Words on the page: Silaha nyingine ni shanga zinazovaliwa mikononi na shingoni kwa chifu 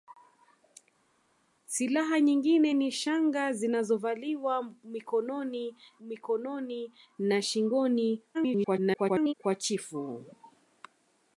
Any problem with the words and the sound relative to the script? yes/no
yes